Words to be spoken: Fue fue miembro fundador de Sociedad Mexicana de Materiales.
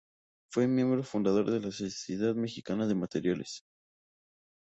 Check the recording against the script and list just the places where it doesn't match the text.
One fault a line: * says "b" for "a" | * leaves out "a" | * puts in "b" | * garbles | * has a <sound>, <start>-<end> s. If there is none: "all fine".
* leaves out "fue"
* puts in "la"